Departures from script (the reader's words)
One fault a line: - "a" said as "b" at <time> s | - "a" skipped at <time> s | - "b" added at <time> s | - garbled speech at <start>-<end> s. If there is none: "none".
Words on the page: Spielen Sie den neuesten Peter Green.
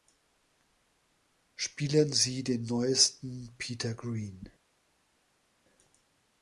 none